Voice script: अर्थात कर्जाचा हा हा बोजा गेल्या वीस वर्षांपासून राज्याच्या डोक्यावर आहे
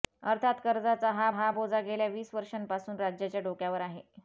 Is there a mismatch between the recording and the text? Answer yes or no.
no